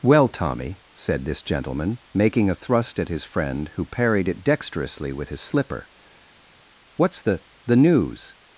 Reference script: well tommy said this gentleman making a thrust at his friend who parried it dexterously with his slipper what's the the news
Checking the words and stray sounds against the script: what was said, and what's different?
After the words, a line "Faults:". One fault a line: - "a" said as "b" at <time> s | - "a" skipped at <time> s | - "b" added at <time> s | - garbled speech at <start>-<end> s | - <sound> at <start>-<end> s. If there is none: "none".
well tommy said this gentleman making a thrust at his friend who parried it dexterously with his slipper what's the the news
Faults:
none